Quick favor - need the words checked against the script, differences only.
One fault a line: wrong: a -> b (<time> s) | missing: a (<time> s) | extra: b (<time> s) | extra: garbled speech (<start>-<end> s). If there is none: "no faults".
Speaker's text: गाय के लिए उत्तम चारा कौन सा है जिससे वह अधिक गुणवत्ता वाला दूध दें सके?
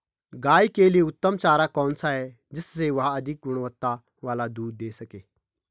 no faults